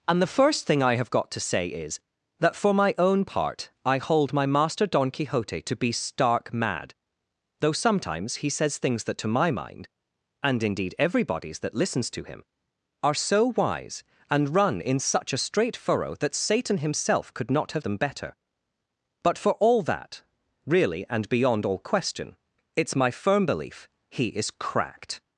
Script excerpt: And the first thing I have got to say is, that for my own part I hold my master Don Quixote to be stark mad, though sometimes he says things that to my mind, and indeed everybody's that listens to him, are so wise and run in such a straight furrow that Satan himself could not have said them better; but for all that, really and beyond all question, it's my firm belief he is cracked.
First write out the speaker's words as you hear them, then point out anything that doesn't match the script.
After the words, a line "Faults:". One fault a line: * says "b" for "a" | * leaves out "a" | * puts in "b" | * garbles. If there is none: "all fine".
And the first thing I have got to say is, that for my own part I hold my master Don Quixote to be stark mad, though sometimes he says things that to my mind, and indeed everybody's that listens to him, are so wise and run in such a straight furrow that Satan himself could not have them better; but for all that, really and beyond all question, it's my firm belief he is cracked.
Faults:
* leaves out "said"